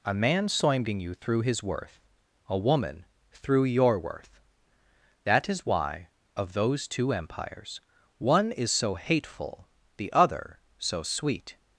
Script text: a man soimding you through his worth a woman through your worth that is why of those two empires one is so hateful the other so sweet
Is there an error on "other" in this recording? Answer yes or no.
no